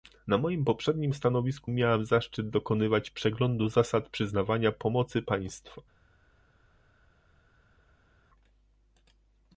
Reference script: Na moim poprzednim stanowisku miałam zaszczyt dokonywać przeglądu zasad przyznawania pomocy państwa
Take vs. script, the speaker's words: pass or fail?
pass